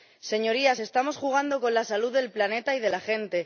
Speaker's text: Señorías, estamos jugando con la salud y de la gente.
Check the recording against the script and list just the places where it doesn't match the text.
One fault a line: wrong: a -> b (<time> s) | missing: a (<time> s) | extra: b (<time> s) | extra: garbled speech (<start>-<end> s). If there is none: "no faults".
extra: del planeta (2.1 s)